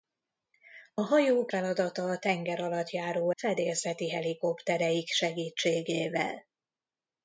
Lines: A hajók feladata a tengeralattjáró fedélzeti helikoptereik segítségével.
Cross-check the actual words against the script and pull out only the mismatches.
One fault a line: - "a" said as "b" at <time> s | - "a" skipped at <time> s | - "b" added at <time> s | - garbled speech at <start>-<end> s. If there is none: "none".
none